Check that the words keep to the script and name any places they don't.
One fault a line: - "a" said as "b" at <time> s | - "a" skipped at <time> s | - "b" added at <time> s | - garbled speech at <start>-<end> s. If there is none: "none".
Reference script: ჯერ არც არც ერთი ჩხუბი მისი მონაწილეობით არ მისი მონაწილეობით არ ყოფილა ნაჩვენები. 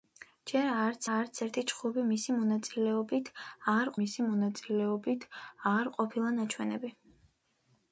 none